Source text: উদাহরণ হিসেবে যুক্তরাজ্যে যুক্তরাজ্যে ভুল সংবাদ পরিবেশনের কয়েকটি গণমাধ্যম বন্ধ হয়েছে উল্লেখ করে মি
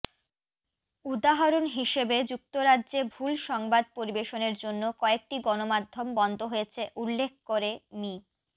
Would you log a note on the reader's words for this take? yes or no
yes